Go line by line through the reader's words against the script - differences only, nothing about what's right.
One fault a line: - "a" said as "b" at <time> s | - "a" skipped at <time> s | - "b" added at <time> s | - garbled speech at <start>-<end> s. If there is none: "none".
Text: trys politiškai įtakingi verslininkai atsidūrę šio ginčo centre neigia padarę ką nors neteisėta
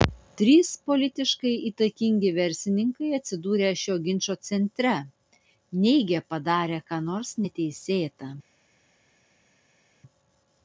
none